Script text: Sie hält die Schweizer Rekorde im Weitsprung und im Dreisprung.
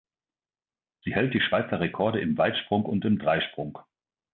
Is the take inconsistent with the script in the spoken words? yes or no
no